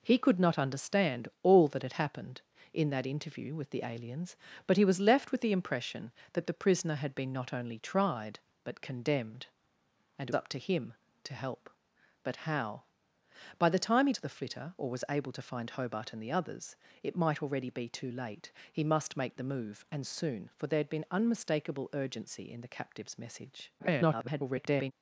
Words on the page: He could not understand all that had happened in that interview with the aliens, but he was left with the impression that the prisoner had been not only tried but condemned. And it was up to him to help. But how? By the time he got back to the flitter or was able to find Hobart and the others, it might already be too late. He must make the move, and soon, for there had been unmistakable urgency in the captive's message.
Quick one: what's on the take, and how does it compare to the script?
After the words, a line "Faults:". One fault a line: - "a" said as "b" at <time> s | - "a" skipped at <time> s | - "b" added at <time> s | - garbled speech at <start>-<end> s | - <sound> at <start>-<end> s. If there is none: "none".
He could not understand all that had happened in that interview with the aliens, but he was left with the impression that the prisoner had been not only tried but condemned. And it up to him to help. But how? By the time he to the flitter or was able to find Hobart and the others, it might already be too late. He must make the move, and soon, for there had been unmistakable urgency in the captive's message. [garbled]
Faults:
- "was" skipped at 10.3 s
- "got back" skipped at 14.1 s
- garbled speech at 23.8-24.9 s